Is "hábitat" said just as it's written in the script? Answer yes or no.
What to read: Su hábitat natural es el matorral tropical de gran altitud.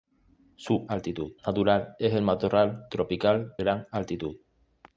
no